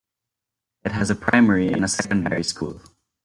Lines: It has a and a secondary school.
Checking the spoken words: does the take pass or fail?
fail